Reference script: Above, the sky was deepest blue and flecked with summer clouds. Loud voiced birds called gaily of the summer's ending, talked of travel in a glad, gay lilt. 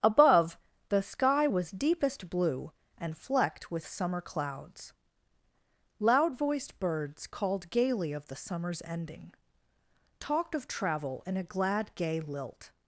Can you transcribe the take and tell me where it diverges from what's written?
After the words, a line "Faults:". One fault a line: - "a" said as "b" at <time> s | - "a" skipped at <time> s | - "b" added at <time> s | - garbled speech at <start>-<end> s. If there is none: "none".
Above, the sky was deepest blue and flecked with summer clouds. Loud voiced birds called gaily of the summer's ending, talked of travel in a glad, gay lilt.
Faults:
none